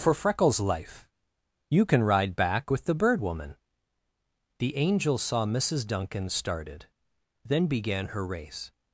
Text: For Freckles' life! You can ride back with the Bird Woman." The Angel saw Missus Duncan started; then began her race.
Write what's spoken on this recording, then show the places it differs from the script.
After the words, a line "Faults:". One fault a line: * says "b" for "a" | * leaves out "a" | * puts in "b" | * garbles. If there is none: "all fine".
For Freckles' life! You can ride back with the Bird Woman." The Angel saw Missus Duncan started; then began her race.
Faults:
all fine